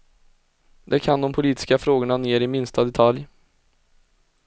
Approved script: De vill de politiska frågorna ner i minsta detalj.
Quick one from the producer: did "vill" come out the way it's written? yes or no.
no